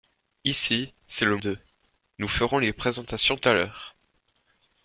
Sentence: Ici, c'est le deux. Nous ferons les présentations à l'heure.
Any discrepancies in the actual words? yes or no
no